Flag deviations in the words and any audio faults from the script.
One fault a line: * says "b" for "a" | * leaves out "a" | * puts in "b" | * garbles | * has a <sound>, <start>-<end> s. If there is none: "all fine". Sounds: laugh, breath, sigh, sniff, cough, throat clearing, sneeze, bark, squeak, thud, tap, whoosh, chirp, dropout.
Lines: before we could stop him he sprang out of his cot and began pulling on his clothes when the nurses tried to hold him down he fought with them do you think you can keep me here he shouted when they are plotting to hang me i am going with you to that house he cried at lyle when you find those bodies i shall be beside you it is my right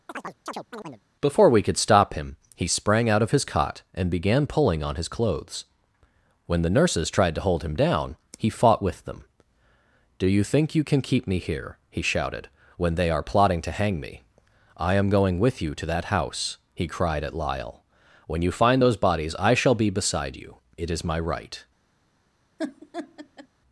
* has a chirp, 0.1-1.0 s
* has a laugh, 22.6-23.5 s